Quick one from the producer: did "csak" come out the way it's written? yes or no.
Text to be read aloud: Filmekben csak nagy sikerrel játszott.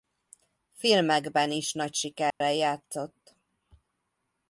no